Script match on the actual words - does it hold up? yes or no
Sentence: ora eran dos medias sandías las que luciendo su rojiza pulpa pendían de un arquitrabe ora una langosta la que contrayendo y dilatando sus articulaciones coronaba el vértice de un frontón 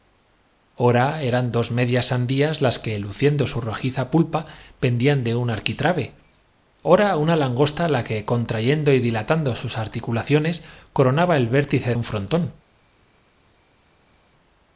no